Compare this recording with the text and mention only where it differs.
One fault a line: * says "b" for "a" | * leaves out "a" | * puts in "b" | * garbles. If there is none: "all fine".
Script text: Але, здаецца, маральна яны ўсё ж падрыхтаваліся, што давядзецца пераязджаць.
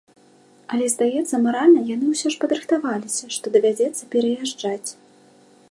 all fine